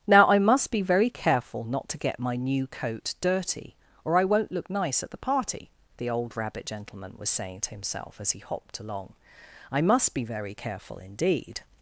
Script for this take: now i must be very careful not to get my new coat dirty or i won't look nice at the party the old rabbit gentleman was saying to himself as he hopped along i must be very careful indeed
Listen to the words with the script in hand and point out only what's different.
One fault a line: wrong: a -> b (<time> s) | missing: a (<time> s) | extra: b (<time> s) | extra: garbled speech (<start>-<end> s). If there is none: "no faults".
no faults